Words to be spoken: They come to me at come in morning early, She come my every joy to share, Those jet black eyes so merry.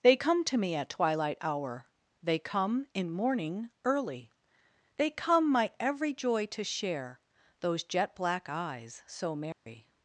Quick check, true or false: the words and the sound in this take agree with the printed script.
false